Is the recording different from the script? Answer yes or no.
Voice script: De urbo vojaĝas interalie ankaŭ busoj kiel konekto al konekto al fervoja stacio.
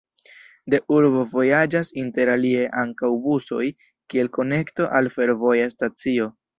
yes